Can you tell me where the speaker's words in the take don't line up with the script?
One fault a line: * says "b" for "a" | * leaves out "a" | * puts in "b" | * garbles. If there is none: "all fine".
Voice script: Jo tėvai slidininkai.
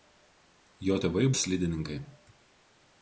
all fine